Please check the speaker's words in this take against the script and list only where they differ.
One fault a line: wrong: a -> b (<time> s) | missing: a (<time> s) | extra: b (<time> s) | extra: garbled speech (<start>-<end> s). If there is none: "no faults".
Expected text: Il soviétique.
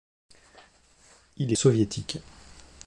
no faults